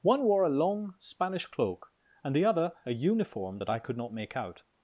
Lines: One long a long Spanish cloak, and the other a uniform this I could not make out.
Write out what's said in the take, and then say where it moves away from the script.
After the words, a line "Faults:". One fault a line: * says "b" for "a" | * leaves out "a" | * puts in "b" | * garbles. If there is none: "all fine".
One wore a long Spanish cloak, and the other a uniform that I could not make out.
Faults:
* says "wore" for "long"
* says "that" for "this"